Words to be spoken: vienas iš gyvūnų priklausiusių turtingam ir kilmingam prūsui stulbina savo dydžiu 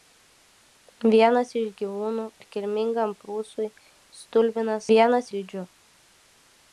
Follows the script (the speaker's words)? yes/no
no